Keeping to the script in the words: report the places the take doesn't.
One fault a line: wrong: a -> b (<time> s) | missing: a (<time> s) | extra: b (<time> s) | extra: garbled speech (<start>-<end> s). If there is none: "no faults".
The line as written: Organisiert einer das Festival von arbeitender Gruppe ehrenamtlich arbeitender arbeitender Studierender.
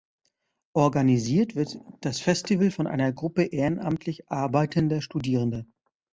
wrong: einer -> wird (1.6 s)
wrong: arbeitender -> einer (2.9 s)
missing: arbeitender (5.0 s)